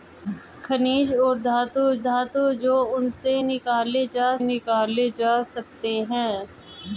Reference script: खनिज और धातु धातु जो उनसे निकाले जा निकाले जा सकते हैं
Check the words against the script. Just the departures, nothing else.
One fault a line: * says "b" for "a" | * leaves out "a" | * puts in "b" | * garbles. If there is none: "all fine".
all fine